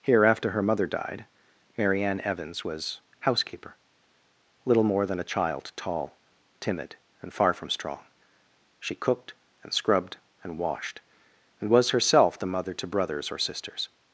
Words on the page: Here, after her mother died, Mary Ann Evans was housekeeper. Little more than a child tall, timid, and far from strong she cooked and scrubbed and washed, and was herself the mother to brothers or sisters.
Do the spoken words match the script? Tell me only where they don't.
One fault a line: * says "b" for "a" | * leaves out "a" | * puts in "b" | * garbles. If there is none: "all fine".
all fine